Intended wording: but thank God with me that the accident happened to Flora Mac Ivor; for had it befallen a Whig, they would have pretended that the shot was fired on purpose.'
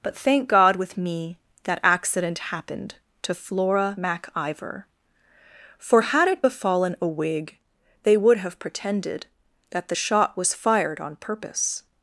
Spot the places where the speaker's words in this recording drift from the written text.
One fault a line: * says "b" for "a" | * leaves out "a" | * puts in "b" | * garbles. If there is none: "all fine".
* leaves out "the"